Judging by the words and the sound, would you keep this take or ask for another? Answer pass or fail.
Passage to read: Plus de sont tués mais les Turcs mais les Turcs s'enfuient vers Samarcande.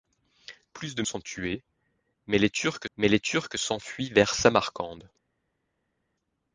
pass